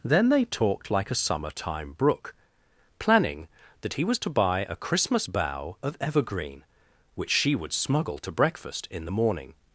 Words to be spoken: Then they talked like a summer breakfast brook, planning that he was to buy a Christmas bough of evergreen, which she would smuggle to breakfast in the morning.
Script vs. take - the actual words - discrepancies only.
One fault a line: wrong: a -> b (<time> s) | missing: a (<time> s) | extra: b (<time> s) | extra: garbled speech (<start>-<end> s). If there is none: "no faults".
wrong: breakfast -> time (1.5 s)